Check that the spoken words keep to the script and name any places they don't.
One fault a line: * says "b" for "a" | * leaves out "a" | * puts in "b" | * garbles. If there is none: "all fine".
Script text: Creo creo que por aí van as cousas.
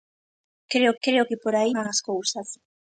all fine